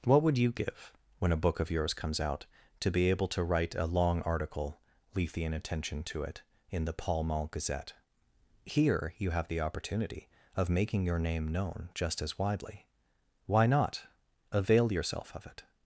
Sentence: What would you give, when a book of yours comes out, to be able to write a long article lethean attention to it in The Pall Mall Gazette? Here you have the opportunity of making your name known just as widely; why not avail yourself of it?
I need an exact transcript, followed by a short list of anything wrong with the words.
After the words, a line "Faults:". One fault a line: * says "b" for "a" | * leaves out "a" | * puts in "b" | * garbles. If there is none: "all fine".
What would you give, when a book of yours comes out, to be able to write a long article lethean attention to it in The Pall Mall Gazette? Here you have the opportunity of making your name known just as widely; why not avail yourself of it?
Faults:
all fine